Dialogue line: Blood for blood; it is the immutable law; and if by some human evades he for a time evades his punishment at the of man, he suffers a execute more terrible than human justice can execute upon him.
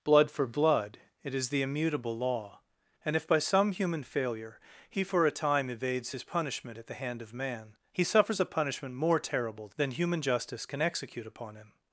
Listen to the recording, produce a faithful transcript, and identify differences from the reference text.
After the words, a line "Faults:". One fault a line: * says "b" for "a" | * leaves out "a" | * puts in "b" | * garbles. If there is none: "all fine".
Blood for blood; it is the immutable law; and if by some human failure he for a time evades his punishment at the hand of man, he suffers a punishment more terrible than human justice can execute upon him.
Faults:
* says "failure" for "evades"
* puts in "hand"
* says "punishment" for "execute"